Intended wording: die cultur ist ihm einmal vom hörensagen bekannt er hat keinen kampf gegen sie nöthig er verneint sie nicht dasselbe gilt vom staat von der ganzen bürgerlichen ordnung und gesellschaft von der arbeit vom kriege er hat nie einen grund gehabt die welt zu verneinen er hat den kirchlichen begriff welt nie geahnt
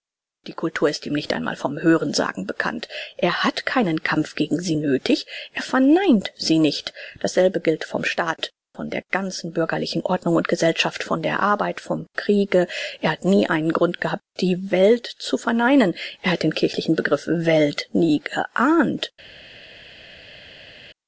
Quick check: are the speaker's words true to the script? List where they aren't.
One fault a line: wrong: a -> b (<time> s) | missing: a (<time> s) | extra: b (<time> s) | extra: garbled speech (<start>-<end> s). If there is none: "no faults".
extra: nicht (1.1 s)